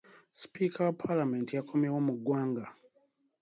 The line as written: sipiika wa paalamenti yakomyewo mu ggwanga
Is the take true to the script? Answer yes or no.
yes